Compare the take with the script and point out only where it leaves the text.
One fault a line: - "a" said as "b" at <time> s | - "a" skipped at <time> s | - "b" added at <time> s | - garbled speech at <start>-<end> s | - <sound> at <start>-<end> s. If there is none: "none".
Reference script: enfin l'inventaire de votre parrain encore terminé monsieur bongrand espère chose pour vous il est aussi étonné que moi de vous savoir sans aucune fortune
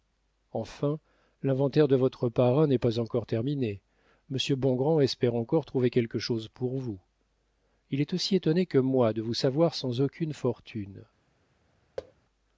- "n'est pas" added at 2.6 s
- "encore trouver quelque" added at 5.3 s
- thud at 12.0-12.1 s